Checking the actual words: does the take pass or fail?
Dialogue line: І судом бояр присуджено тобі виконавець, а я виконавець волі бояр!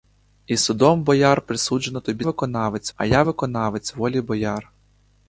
pass